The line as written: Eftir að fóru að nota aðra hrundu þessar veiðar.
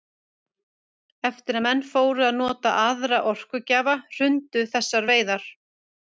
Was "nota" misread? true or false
false